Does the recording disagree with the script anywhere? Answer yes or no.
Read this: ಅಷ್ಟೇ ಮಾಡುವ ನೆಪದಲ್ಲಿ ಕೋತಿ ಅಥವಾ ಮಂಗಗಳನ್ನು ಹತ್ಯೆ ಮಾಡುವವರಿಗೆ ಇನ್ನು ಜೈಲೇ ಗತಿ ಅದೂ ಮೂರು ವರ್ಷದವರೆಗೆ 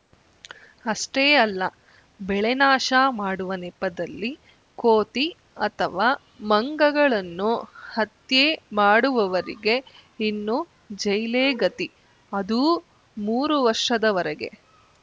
yes